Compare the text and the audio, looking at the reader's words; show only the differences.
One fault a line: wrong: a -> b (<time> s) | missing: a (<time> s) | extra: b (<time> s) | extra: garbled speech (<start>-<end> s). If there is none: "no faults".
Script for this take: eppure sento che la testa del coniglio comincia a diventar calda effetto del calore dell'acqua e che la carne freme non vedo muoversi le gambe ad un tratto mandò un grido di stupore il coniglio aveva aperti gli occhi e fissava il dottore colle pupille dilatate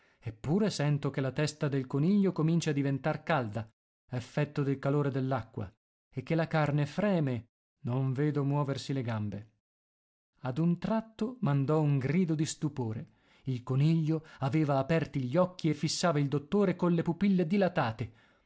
no faults